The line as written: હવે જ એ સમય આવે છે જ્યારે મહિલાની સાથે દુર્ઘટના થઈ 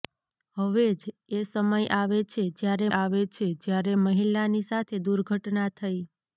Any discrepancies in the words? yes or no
yes